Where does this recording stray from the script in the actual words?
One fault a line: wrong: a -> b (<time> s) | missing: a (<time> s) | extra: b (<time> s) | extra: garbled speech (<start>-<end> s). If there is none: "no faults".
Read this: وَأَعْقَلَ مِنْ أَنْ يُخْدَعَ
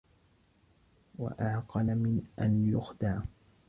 no faults